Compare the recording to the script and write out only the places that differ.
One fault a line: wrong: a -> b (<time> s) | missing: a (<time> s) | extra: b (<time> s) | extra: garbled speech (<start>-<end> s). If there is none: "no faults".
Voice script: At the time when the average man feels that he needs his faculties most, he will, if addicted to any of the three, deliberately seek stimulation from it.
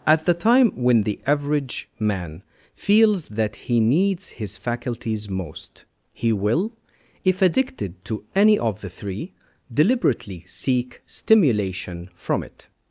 no faults